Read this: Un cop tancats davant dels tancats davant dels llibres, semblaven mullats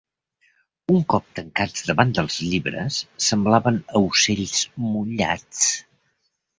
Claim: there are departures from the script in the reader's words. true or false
true